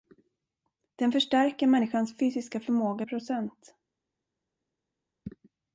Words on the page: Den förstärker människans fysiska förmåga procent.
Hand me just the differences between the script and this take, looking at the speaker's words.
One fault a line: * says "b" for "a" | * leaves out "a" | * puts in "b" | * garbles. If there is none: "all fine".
all fine